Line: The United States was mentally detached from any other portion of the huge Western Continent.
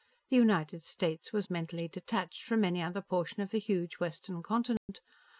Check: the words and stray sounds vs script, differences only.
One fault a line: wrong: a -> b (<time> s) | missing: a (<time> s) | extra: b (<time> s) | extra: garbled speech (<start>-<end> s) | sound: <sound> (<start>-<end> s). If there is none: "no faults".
sound: dropout (4.8-4.9 s)